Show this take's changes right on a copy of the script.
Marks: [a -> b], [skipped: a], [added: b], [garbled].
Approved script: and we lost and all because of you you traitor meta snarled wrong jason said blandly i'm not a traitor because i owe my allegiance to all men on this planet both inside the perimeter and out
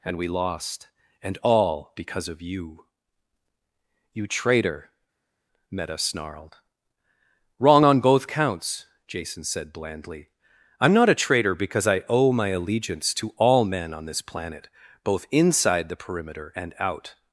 and we lost and all because of you you traitor meta snarled wrong [added: on both counts] jason said blandly i'm not a traitor because i owe my allegiance to all men on this planet both inside the perimeter and out